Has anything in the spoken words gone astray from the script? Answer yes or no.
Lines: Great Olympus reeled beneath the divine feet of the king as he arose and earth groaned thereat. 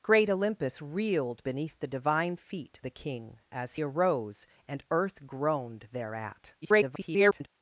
yes